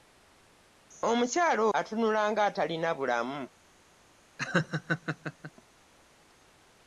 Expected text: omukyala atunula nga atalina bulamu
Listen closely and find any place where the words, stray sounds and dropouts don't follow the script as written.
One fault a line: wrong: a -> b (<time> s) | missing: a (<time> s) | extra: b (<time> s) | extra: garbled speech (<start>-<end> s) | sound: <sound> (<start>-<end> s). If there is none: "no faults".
sound: laugh (4.4-5.5 s)